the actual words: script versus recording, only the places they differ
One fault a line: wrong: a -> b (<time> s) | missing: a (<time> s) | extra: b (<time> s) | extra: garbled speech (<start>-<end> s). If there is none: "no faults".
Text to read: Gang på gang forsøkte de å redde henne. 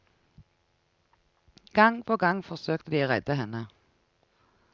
no faults